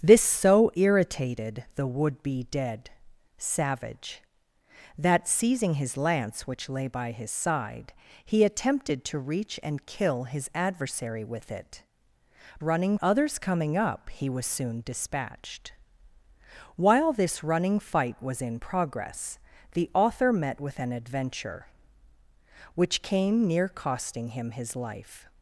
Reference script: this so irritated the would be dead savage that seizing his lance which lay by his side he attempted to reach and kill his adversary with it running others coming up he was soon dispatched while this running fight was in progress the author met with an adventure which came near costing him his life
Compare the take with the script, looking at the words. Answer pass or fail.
pass